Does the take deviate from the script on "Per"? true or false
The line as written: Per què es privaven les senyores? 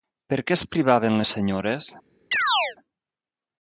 false